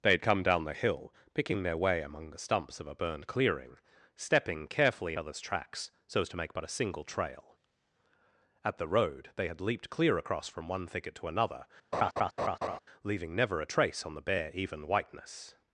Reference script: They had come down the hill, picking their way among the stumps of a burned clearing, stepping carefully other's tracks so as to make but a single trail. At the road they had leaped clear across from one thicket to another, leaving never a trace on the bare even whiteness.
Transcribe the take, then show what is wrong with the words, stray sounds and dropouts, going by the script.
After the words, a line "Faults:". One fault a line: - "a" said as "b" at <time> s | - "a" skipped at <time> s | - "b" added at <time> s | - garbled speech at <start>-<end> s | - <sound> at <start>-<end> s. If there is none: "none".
They had come down the hill, picking their way among the stumps of a burned clearing, stepping carefully other's tracks so as to make but a single trail. At the road they had leaped clear across from one thicket to another, leaving never a trace on the bare even whiteness.
Faults:
- laugh at 11.9-12.8 s